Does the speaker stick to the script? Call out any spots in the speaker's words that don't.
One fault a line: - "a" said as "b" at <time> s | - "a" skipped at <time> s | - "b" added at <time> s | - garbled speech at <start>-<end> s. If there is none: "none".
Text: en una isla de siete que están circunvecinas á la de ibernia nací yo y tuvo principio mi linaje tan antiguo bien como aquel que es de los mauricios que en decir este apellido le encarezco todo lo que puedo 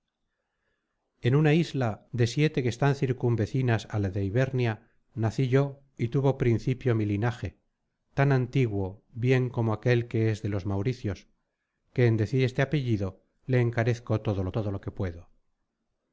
- "todo lo" added at 14.5 s